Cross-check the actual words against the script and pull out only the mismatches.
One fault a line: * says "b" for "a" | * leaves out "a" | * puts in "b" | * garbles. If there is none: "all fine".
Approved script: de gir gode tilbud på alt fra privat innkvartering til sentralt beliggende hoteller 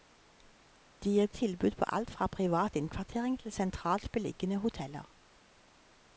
* leaves out "gode"